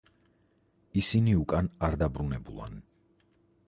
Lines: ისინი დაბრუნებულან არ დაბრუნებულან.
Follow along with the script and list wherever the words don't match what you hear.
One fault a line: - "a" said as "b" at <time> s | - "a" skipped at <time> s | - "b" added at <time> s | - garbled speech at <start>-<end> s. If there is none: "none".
- "დაბრუნებულან" said as "უკან" at 1.4 s